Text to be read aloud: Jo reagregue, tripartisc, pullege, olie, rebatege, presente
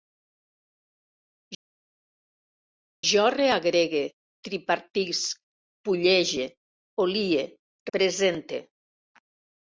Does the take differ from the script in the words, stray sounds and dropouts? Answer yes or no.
yes